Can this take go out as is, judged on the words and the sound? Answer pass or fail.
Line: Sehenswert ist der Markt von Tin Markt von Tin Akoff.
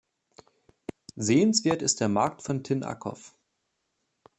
fail